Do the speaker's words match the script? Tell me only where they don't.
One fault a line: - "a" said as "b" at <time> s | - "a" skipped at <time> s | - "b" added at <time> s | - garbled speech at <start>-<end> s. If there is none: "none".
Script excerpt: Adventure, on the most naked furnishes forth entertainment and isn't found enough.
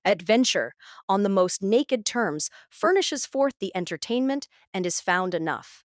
- "terms" added at 2.0 s
- "the" added at 3.6 s
- "isn't" said as "is" at 4.8 s